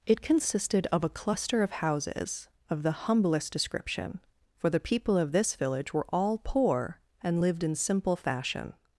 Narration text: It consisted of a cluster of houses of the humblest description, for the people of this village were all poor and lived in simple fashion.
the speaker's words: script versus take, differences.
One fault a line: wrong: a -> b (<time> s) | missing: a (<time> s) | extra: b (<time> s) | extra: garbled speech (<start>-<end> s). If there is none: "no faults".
no faults